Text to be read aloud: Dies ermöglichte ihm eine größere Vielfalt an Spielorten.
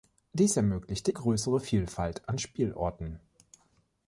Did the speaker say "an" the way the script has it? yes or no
yes